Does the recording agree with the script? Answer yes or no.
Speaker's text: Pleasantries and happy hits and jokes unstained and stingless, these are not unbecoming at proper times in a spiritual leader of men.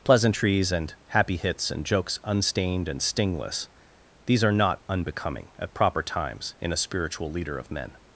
yes